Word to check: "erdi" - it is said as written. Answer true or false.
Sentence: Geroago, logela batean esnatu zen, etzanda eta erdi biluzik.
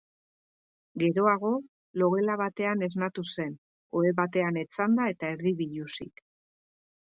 true